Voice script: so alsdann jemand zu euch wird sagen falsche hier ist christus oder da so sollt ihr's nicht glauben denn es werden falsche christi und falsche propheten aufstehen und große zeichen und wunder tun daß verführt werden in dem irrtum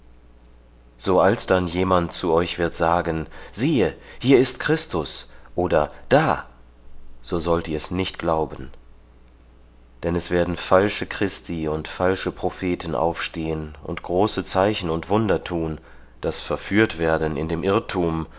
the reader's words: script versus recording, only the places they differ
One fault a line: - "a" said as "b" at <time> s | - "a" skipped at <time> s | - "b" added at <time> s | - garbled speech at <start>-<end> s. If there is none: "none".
- "falsche" said as "siehe" at 3.5 s